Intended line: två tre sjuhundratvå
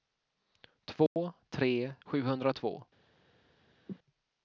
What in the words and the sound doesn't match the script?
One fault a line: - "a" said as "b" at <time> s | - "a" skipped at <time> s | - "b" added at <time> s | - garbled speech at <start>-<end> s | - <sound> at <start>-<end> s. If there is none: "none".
- dropout at 1.1-1.2 s
- cough at 3.9-4.0 s